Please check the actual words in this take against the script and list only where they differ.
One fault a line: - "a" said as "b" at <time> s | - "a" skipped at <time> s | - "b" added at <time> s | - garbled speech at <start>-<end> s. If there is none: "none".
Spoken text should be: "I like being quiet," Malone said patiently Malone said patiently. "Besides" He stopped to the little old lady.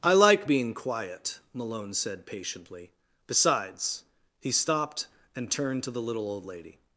- "Malone said patiently" skipped at 2.9 s
- "and turned" added at 5.4 s